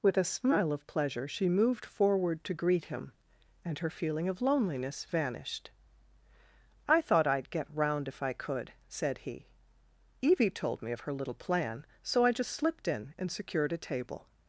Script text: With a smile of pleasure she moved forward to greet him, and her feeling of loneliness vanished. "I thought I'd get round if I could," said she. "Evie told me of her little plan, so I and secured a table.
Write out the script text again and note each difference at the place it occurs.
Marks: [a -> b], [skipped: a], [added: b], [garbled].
With a smile of pleasure she moved forward to greet him, and her feeling of loneliness vanished. "I thought I'd get round if I could," said [she. -> he] "Evie told me of her little plan, so I [added: just slipped in] and secured a table.